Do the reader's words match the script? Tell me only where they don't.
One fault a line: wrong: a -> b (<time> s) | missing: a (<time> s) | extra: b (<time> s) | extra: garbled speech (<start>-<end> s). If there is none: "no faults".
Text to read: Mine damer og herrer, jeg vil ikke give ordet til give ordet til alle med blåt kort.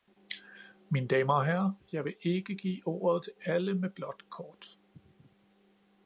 missing: give ordet til (3.3 s)